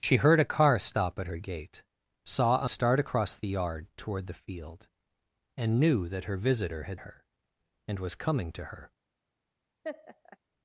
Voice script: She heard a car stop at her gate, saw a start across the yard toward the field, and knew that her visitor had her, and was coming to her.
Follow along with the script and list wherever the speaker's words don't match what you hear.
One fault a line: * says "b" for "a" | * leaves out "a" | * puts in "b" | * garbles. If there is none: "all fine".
all fine